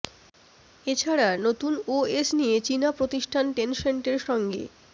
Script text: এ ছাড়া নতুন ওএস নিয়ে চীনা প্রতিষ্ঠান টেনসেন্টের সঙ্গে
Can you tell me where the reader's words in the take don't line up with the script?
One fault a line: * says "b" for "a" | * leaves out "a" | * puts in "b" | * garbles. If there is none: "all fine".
all fine